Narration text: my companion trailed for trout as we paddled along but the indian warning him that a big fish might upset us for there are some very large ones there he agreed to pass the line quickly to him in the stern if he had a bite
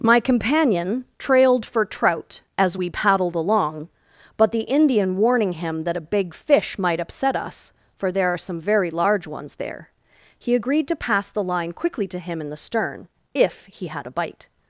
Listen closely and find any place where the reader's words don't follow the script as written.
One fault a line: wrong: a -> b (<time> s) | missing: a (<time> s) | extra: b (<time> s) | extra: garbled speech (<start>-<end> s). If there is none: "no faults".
no faults